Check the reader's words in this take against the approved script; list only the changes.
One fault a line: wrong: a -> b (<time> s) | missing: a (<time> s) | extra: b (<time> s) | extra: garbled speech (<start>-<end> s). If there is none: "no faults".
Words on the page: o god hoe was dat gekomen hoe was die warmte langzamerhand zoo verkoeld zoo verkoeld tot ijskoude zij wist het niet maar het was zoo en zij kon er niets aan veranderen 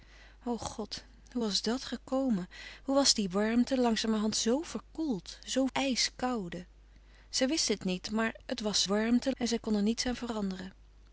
missing: verkoeld tot (5.7 s)
wrong: zoo -> warmte (8.8 s)